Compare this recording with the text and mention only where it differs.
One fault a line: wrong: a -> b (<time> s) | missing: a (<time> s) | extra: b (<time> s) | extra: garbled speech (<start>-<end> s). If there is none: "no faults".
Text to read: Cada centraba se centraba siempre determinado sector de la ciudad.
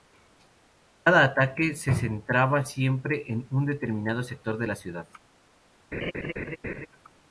wrong: centraba -> ataque (1.2 s)
extra: en un (3.3 s)